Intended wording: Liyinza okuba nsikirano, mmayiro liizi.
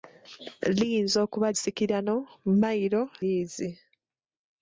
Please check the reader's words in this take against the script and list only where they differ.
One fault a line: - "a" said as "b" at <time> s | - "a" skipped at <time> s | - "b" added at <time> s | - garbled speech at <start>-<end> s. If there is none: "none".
none